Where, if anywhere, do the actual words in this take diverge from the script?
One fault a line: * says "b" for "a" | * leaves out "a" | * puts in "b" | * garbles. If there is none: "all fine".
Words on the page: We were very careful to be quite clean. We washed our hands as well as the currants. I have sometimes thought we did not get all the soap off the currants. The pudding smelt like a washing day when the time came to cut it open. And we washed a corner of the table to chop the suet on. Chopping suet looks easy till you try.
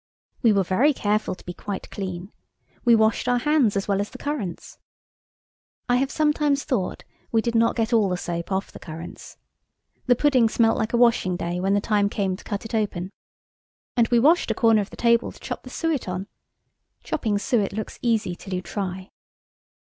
all fine